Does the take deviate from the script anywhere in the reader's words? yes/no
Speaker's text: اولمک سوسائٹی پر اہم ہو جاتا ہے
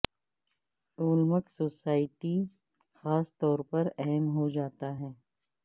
yes